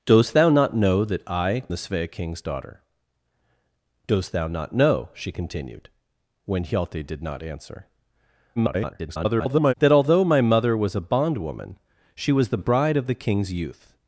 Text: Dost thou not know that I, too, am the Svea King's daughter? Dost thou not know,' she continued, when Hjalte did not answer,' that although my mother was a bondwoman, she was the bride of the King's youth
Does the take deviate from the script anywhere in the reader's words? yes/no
yes